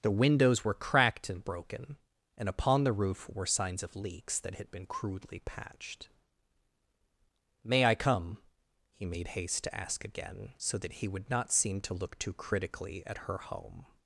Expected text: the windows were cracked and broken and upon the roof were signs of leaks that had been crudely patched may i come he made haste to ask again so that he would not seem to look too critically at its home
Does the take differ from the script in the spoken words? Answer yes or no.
yes